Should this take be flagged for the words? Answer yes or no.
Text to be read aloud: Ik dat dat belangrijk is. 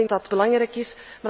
no